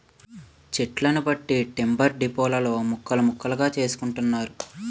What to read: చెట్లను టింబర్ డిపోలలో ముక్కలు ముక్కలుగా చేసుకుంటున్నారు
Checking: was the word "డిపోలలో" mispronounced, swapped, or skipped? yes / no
no